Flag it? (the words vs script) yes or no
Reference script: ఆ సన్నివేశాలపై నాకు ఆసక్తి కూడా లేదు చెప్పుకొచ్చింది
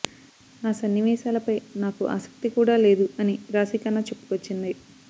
yes